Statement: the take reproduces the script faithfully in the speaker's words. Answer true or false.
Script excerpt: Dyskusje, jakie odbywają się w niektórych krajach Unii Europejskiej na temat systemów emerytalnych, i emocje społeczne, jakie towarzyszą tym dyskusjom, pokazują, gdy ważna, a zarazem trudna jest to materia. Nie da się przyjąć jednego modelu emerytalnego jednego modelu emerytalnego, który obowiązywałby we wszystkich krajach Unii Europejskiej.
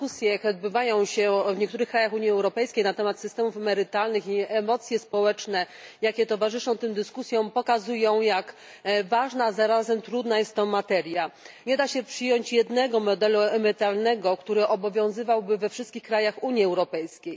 false